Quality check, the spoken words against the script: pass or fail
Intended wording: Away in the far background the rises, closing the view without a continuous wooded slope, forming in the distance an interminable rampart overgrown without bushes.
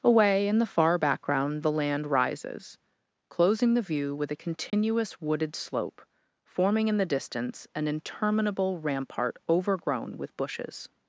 fail